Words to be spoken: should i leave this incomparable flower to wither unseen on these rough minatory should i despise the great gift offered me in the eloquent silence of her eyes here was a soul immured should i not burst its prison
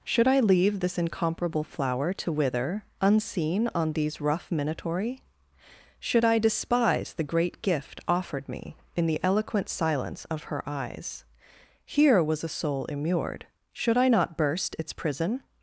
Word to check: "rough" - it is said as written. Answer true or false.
true